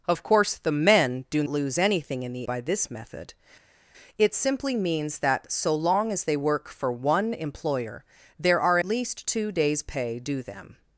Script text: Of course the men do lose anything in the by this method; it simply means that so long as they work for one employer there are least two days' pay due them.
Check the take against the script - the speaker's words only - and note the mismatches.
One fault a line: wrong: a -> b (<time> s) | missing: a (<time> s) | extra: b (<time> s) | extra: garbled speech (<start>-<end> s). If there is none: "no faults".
no faults